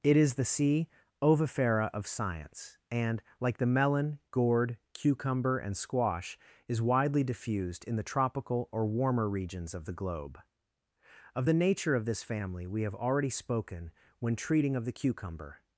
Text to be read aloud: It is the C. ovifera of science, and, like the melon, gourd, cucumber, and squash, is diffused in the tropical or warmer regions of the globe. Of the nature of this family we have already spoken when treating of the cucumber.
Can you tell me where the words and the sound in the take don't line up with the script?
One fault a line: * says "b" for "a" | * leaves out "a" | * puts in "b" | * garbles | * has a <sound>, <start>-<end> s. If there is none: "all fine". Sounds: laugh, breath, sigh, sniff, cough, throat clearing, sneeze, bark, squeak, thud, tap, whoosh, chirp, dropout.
* puts in "widely"